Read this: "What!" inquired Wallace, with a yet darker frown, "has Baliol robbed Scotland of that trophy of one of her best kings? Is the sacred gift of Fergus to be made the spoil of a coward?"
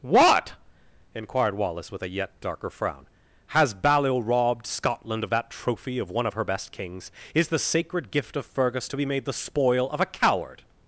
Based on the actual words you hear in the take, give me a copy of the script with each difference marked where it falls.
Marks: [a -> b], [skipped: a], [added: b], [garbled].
"What!" inquired Wallace, with a yet darker frown, "has Baliol robbed Scotland of that trophy of one of her best kings? Is the sacred gift of Fergus to be made the spoil of a coward?"